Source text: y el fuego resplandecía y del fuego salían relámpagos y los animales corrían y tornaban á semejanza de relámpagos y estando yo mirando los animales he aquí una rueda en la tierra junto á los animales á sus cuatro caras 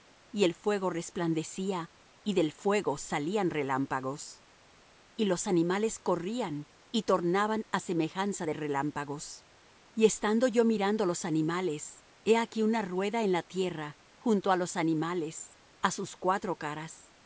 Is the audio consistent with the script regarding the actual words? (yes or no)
yes